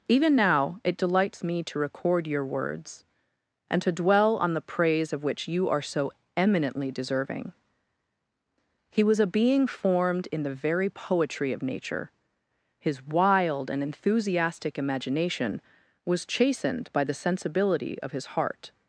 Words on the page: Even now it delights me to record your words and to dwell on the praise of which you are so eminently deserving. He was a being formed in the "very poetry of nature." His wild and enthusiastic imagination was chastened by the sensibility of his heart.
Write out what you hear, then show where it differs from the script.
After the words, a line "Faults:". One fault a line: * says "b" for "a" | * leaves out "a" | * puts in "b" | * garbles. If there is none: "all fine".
Even now it delights me to record your words and to dwell on the praise of which you are so eminently deserving. He was a being formed in the "very poetry of nature." His wild and enthusiastic imagination was chastened by the sensibility of his heart.
Faults:
all fine